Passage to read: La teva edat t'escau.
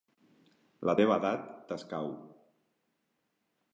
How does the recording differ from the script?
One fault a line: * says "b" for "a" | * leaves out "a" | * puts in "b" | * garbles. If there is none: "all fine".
all fine